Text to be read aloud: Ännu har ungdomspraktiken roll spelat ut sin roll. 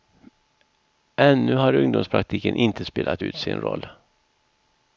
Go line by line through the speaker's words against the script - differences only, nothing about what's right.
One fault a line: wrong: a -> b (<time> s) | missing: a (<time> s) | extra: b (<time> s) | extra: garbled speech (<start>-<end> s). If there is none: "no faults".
wrong: roll -> inte (2.5 s)